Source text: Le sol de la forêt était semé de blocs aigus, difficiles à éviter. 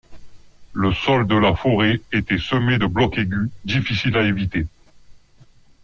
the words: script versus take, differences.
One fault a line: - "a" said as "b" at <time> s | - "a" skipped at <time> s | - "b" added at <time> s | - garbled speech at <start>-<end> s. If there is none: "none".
none